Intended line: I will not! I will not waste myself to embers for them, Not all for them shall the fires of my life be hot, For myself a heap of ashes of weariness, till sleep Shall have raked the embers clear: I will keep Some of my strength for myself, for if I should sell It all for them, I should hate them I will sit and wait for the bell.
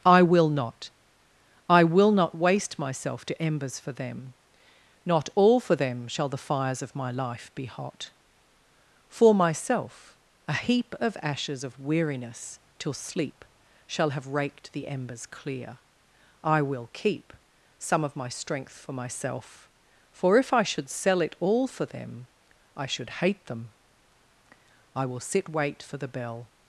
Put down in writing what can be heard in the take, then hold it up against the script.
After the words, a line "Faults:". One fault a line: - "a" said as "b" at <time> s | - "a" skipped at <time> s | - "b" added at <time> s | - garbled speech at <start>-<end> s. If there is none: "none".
I will not! I will not waste myself to embers for them, Not all for them shall the fires of my life be hot, For myself a heap of ashes of weariness, till sleep Shall have raked the embers clear: I will keep Some of my strength for myself, for if I should sell It all for them, I should hate them I will sit wait for the bell.
Faults:
- "and" skipped at 25.5 s